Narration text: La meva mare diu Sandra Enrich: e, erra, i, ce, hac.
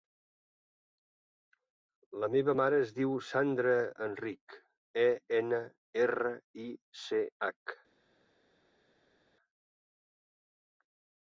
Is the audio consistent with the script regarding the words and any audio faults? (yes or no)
no